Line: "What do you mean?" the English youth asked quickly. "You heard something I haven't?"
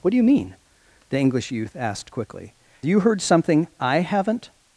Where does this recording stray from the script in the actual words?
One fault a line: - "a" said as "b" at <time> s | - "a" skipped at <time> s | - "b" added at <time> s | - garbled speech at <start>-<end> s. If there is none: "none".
none